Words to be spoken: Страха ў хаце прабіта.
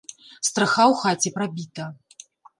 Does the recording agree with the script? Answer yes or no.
yes